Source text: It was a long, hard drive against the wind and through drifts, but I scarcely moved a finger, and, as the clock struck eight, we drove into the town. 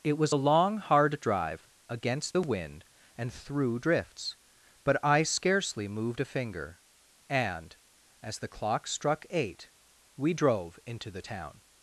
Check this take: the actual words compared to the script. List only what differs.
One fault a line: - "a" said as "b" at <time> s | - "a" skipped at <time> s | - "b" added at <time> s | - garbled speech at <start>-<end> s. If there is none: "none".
none